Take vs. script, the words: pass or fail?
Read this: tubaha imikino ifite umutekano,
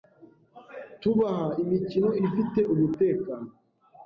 pass